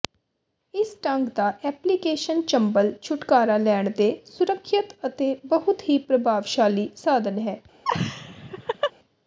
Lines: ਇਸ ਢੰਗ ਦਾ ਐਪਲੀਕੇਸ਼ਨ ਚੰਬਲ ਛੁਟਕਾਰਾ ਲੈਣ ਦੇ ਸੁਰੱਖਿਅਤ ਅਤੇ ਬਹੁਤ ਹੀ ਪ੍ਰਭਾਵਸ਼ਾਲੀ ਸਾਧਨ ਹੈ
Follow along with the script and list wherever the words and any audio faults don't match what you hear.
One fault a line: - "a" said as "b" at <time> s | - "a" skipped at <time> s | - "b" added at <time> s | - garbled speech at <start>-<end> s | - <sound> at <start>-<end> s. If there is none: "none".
- laugh at 7.8-8.9 s